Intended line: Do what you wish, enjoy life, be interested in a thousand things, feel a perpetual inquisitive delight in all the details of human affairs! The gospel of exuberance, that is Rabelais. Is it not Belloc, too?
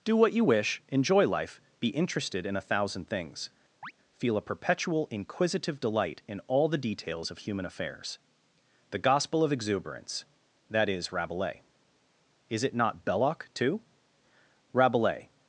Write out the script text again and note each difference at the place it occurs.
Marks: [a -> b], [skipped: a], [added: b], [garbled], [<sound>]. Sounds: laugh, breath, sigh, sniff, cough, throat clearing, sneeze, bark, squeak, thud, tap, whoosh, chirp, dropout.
Do what you wish, enjoy life, be interested in a thousand things, [chirp] feel a perpetual inquisitive delight in all the details of human affairs! The gospel of exuberance, that is Rabelais. Is it not Belloc, too? [added: Rabelais]